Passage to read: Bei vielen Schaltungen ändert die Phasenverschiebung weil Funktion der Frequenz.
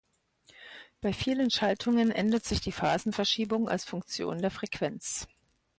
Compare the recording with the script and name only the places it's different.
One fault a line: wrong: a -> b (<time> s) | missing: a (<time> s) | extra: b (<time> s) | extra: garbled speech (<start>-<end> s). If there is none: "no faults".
extra: sich (2.4 s)
wrong: weil -> als (3.7 s)